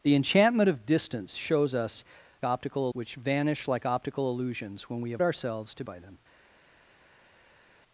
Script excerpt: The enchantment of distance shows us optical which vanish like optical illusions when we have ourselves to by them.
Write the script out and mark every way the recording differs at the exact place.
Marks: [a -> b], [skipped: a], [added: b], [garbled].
The enchantment of distance shows us optical which vanish like optical illusions when we have ourselves to by them.